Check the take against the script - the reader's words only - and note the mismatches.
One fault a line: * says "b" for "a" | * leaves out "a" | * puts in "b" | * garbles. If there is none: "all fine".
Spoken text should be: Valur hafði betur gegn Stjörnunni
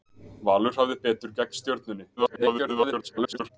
* garbles